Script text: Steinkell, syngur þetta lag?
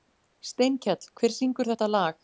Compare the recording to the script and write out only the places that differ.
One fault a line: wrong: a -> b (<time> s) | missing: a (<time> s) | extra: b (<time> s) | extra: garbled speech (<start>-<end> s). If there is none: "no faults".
extra: hver (1.2 s)